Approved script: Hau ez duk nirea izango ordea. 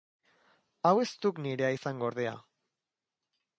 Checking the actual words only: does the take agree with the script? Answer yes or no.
yes